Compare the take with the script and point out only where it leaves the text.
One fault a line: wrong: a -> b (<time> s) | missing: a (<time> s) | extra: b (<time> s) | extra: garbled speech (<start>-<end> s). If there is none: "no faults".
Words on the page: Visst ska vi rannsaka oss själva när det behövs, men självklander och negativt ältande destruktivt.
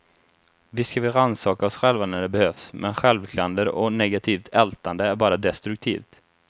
extra: är bara (5.0 s)